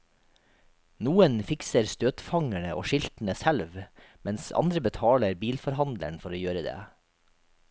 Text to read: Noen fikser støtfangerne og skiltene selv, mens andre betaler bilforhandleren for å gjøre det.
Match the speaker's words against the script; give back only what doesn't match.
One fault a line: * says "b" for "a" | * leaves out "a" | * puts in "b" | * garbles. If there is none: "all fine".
all fine